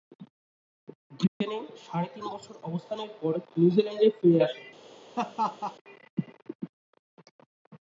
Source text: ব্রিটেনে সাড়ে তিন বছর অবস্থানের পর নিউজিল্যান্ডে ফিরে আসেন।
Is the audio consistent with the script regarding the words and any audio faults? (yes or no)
no